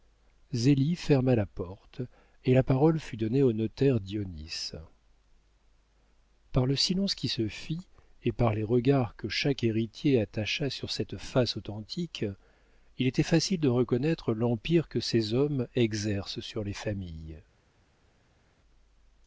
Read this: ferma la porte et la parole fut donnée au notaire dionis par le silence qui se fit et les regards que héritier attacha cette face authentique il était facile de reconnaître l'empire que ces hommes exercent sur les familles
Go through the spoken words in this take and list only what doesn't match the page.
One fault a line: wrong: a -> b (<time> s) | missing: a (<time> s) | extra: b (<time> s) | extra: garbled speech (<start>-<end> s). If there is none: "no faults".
extra: par (8.3 s)
extra: chaque (9.3 s)
extra: sur (10.7 s)